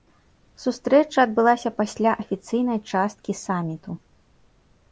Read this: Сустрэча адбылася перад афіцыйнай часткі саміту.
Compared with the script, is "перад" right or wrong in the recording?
wrong